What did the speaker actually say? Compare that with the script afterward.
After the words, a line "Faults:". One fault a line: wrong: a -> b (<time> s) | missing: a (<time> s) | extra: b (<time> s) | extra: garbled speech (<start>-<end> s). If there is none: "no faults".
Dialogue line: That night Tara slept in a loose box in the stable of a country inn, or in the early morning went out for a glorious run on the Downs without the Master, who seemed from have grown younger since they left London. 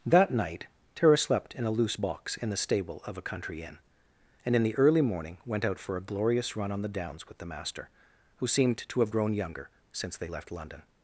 That night Tara slept in a loose box in the stable of a country inn, and in the early morning went out for a glorious run on the Downs with the Master, who seemed to have grown younger since they left London.
Faults:
wrong: or -> and (4.4 s)
wrong: without -> with (7.3 s)
wrong: from -> to (8.8 s)